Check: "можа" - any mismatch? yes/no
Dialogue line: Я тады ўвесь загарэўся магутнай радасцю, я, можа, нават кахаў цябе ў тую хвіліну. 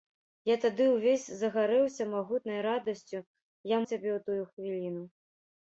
yes